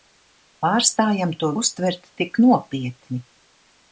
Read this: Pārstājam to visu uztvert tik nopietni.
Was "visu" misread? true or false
true